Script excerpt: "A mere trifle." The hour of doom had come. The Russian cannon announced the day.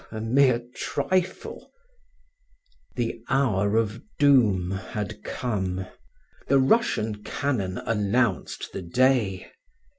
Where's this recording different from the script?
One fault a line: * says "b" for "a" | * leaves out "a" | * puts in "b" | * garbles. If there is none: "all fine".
all fine